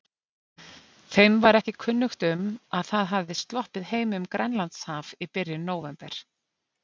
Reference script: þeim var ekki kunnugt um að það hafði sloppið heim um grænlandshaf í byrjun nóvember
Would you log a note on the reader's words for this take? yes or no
no